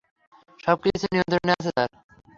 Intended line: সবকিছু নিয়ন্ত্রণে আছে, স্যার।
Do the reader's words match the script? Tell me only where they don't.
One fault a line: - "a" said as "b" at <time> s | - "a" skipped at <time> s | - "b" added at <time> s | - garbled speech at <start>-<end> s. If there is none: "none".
none